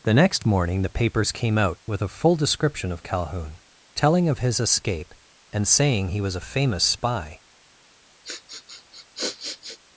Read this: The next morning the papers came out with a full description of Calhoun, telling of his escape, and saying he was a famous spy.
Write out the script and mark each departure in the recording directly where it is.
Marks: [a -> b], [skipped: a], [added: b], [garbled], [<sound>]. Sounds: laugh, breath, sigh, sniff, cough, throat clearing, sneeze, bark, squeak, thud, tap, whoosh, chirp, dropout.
The next morning the papers came out with a full description of Calhoun, telling of his escape, and saying he was a famous spy. [sniff]